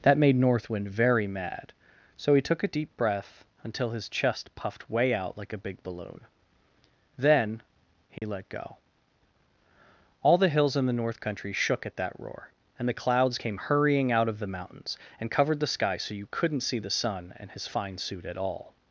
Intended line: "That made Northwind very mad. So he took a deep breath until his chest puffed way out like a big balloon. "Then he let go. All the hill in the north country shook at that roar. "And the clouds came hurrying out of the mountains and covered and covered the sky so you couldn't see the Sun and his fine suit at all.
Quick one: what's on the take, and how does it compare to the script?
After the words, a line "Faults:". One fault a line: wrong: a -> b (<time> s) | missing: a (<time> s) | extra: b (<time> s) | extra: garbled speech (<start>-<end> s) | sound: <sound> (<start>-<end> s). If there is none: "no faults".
"That made Northwind very mad. So he took a deep breath until his chest puffed way out like a big balloon. "Then he let go. All the hills in the north country shook at that roar. "And the clouds came hurrying out of the mountains and covered the sky so you couldn't see the Sun and his fine suit at all.
Faults:
sound: dropout (8.2-8.2 s)
wrong: hill -> hills (10.5 s)
missing: and covered (15.6 s)